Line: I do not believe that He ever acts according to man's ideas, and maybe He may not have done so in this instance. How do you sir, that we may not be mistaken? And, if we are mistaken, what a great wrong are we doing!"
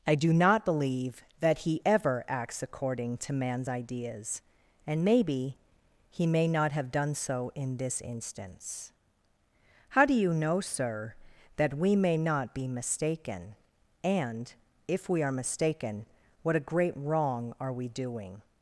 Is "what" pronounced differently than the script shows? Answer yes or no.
no